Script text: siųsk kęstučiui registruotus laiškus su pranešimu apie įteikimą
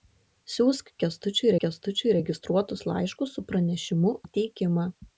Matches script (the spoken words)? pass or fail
fail